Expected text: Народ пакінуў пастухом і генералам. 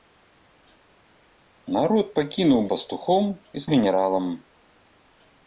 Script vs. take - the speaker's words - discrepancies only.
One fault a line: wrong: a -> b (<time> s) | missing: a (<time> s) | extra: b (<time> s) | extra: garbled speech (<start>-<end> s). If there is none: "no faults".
no faults